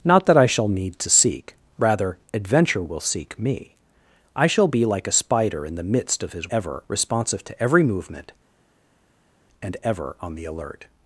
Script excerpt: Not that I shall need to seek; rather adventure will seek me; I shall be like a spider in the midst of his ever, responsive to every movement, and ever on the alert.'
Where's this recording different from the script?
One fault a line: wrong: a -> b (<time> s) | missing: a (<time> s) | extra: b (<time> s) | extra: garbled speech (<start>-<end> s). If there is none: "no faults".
no faults